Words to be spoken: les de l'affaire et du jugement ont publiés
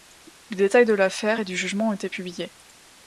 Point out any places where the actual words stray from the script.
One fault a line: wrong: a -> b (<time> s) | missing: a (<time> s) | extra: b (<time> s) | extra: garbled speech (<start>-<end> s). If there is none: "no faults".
extra: détails (0.6 s)
extra: été (1.9 s)